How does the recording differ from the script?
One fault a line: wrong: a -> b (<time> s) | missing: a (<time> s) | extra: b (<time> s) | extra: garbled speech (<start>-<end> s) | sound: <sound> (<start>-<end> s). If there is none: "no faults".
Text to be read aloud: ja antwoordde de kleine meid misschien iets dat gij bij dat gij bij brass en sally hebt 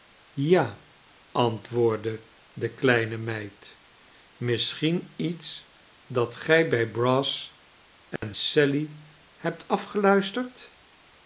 missing: dat gij bij (6.9 s)
sound: dropout (8.2-8.2 s)